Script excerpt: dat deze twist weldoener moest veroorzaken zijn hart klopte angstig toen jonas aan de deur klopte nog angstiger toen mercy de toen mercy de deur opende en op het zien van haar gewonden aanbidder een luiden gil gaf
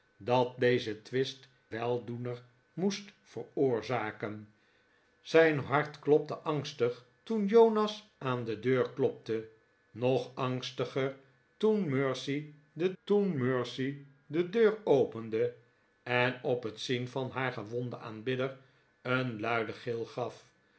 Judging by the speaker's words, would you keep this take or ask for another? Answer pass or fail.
pass